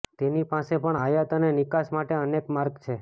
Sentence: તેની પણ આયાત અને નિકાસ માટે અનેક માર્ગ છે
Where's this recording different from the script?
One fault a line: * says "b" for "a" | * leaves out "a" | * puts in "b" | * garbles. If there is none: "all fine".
* puts in "પાસે"